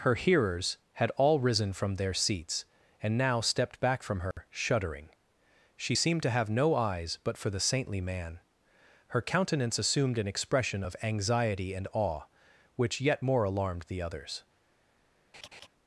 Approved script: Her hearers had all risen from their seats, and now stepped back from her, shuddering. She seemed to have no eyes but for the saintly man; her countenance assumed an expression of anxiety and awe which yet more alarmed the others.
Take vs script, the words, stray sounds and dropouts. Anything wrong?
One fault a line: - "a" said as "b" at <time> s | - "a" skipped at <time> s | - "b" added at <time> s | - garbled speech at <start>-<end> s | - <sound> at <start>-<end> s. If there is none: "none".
- dropout at 4.3-4.4 s
- laugh at 15.3-15.7 s